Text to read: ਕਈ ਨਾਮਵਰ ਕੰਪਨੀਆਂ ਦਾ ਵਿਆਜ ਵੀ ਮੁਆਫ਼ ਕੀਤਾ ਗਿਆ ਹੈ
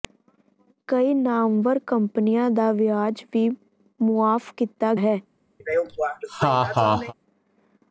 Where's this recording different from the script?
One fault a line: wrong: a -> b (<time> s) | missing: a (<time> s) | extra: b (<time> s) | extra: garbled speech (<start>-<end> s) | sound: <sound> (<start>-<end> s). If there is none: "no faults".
missing: ਗਿਆ (4.9 s)
sound: laugh (5.6-7.1 s)